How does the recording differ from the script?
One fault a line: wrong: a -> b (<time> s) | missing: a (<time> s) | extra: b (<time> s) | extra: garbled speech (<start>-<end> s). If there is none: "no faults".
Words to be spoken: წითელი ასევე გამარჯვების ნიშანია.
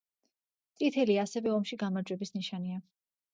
extra: ომში (1.6 s)